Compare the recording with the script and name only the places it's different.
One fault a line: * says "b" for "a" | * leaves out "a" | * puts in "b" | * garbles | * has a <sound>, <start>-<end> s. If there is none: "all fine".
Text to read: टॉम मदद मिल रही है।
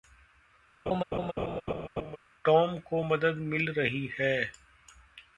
* has a laugh, 0.9-2.2 s
* puts in "को"